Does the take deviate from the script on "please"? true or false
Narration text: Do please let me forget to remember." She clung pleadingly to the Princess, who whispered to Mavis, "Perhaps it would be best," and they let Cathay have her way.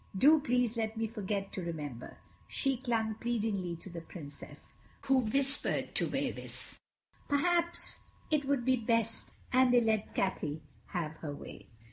false